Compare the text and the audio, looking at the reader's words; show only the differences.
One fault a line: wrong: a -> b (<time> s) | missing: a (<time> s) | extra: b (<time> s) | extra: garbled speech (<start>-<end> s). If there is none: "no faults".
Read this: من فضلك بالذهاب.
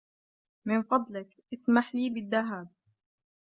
extra: اسمح لي (1.5 s)